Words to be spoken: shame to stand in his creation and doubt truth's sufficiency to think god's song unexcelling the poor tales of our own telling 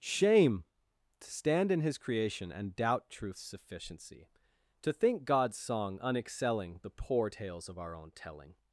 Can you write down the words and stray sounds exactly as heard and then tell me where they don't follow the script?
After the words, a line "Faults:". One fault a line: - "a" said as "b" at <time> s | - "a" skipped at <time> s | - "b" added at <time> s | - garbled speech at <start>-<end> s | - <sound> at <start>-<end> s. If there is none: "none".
shame to stand in his creation and doubt truth's sufficiency to think god's song unexcelling the poor tales of our own telling
Faults:
none